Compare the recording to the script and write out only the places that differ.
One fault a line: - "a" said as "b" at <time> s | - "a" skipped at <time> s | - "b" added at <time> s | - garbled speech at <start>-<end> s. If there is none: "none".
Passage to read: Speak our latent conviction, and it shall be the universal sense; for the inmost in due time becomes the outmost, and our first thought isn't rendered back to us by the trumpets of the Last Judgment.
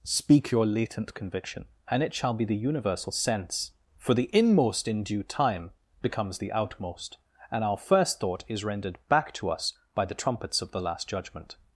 - "our" said as "your" at 0.5 s
- "isn't" said as "is" at 8.5 s